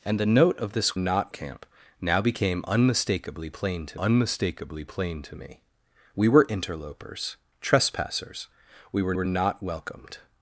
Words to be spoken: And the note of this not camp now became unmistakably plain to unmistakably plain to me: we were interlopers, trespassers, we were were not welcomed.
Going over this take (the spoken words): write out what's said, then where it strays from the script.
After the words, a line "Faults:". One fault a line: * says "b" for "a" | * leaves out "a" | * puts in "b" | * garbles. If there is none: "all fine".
And the note of this not camp now became unmistakably plain to unmistakably plain to me: we were interlopers, trespassers, we were were not welcomed.
Faults:
all fine